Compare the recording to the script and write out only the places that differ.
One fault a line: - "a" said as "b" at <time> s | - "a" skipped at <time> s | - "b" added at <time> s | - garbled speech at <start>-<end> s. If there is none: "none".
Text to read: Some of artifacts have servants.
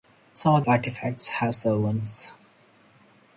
none